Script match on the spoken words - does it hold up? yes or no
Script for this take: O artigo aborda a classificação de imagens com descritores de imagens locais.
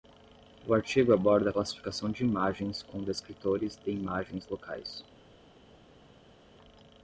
yes